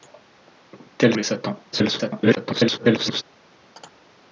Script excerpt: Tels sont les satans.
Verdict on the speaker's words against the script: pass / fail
fail